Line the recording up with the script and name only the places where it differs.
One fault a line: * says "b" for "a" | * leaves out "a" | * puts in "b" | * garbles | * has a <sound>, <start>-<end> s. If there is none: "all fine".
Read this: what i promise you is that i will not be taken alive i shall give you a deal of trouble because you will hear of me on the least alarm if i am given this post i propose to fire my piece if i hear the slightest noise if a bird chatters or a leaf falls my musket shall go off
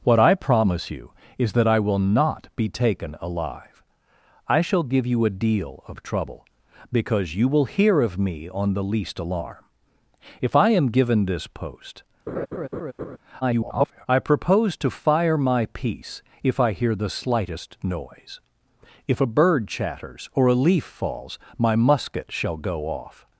* has a laugh, 12.3-13.2 s
* garbles